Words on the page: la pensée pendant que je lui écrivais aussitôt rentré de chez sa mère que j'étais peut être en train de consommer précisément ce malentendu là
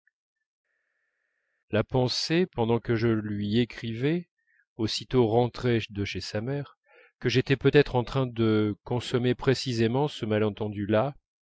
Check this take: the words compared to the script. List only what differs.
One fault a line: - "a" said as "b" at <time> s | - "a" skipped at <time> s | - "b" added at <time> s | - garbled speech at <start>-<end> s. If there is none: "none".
none